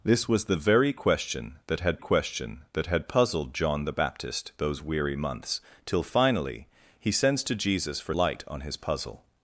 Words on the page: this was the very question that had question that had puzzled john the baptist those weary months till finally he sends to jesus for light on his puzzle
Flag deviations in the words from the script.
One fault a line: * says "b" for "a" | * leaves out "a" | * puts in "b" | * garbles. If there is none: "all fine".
all fine